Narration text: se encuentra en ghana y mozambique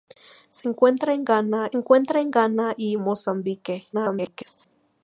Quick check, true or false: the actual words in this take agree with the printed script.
false